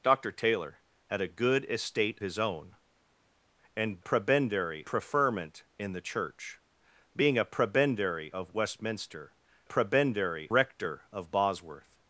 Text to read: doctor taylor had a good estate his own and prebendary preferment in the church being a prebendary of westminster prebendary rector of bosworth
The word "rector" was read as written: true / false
true